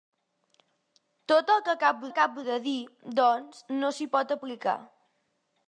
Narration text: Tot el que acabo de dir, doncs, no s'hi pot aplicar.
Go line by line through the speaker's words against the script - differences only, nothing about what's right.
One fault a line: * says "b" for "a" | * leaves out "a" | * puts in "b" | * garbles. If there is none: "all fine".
* puts in "acabo"